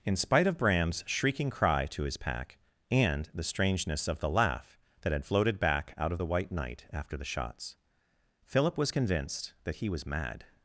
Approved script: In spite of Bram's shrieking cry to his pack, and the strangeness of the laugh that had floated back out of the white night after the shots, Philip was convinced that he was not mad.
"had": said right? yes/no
yes